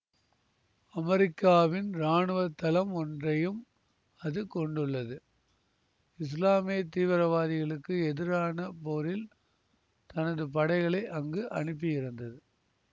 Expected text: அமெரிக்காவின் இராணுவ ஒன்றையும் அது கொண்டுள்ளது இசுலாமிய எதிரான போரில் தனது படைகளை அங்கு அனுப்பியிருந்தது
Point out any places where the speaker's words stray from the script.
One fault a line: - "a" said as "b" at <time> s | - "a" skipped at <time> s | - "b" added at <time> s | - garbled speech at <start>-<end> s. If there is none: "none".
- "தளம்" added at 2.6 s
- "தீவிரவாதிகளுக்கு" added at 6.9 s